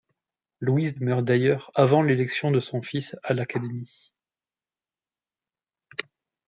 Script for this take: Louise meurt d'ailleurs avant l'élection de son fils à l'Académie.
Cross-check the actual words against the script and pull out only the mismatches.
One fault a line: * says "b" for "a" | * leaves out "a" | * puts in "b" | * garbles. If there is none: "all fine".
all fine